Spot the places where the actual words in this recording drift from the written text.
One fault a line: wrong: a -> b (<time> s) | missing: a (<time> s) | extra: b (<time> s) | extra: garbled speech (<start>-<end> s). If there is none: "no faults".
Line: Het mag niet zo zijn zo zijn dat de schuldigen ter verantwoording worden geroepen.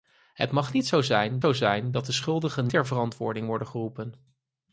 no faults